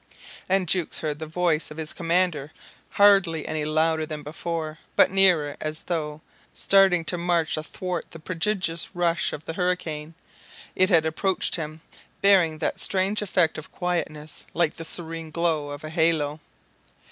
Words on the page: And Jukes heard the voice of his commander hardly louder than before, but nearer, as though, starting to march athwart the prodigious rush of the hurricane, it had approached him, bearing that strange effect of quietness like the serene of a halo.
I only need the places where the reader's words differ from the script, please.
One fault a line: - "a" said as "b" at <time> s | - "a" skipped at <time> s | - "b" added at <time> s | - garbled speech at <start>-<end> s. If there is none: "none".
- "any" added at 3.5 s
- "glow" added at 15.3 s